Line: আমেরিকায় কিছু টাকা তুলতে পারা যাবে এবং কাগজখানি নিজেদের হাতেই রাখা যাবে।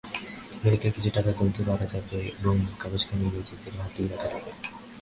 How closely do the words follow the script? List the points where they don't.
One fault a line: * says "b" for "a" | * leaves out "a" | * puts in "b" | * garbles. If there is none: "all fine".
all fine